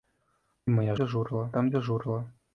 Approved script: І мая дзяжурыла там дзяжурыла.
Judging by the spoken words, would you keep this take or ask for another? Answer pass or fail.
pass